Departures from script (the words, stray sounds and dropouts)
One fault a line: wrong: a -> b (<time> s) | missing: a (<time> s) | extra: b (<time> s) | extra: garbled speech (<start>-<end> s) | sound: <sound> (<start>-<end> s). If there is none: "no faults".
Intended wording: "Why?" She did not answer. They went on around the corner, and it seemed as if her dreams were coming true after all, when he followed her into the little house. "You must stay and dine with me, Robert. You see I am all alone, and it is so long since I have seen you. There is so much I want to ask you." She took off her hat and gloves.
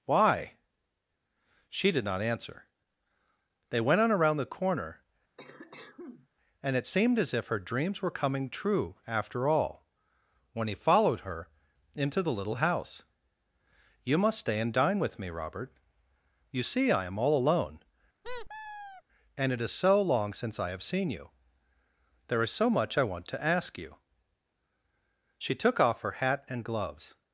sound: cough (5.4-6.3 s)
sound: squeak (18.2-19.0 s)